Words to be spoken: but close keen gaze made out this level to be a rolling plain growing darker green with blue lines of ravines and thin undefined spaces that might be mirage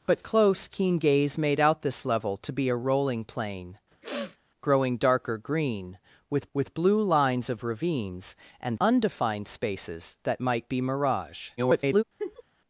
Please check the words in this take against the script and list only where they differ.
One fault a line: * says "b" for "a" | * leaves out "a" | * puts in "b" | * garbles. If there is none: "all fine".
* puts in "with"
* leaves out "thin"
* garbles